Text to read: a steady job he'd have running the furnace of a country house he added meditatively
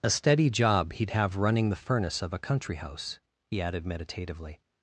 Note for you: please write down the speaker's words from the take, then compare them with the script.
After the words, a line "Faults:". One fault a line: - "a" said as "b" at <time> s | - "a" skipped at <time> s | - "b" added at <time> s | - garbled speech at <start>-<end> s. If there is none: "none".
a steady job he'd have running the furnace of a country house he added meditatively
Faults:
none